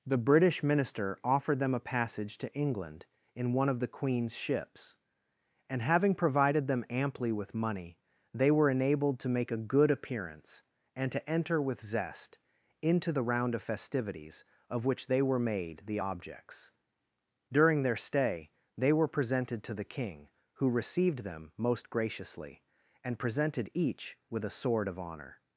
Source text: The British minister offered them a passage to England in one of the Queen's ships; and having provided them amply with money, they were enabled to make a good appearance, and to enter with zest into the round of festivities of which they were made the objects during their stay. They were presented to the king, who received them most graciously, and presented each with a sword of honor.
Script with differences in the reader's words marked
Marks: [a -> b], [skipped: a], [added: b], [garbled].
The British minister offered them a passage to England in one of the Queen's ships; and having provided them amply with money, they were enabled to make a good appearance, and to enter with zest into the round of festivities of which they were made the objects during their stay. They were presented to the king, who received them most graciously, and presented each with a sword of honor.